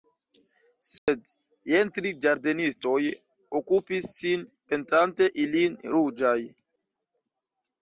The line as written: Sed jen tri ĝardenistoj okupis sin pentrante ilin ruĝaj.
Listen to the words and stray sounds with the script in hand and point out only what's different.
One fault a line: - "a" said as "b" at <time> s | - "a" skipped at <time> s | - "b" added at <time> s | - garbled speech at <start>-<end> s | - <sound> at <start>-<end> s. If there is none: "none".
- dropout at 1.0-1.1 s